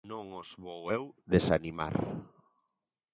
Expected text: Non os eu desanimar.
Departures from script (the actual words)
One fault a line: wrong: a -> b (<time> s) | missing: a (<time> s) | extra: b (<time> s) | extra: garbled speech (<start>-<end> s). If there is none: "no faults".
extra: vou (0.6 s)